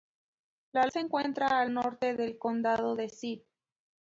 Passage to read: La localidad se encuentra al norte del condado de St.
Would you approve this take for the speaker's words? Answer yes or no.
no